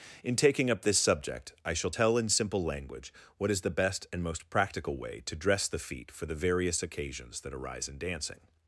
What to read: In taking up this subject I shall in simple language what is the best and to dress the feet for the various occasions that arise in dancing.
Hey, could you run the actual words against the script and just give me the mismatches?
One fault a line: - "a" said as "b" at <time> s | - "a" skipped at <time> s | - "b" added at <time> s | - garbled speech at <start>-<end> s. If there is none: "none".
- "tell" added at 1.9 s
- "most practical way" added at 4.2 s